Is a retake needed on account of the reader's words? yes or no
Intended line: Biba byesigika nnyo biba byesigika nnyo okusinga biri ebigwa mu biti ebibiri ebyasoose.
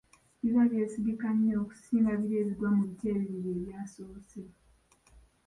yes